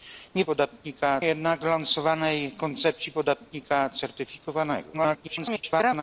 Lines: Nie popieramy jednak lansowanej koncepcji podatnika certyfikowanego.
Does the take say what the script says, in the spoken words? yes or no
no